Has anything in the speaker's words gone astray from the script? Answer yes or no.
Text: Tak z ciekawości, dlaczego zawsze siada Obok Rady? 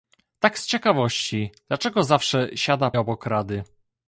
no